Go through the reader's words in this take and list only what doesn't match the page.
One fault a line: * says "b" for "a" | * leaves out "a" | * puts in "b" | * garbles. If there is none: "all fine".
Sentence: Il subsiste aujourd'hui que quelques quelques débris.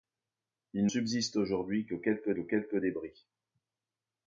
all fine